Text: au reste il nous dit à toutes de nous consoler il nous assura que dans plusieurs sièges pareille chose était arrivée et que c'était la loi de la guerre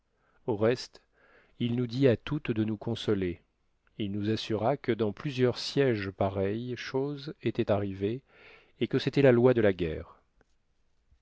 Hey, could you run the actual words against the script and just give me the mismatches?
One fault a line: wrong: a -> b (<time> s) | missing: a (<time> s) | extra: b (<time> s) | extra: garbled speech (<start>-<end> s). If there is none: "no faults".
no faults